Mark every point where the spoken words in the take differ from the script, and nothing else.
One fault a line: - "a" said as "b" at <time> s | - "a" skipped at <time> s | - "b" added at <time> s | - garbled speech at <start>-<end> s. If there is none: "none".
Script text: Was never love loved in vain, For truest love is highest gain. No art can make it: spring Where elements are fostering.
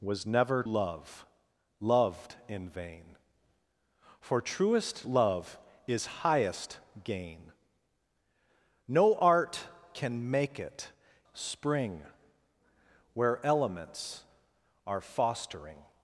none